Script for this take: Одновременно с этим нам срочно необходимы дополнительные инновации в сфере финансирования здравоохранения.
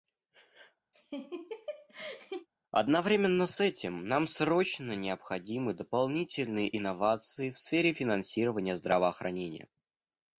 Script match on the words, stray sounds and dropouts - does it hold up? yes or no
no